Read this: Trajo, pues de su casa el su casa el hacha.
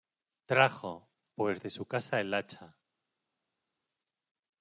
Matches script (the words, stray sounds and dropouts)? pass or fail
fail